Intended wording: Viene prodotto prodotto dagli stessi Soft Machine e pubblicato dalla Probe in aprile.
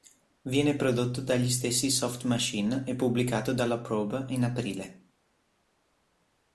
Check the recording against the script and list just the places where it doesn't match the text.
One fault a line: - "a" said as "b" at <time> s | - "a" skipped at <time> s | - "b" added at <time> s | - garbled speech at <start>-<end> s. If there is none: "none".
- "prodotto" skipped at 1.2 s